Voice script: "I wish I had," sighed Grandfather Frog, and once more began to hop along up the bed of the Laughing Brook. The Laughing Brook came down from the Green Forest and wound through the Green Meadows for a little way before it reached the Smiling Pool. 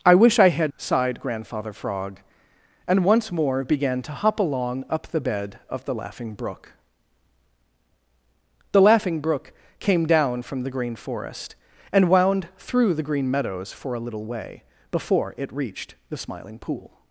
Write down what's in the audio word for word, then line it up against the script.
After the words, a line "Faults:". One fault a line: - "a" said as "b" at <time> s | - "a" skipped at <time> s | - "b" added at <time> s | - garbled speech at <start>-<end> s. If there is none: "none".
"I wish I had," sighed Grandfather Frog, and once more began to hop along up the bed of the Laughing Brook. The Laughing Brook came down from the Green Forest and wound through the Green Meadows for a little way before it reached the Smiling Pool.
Faults:
none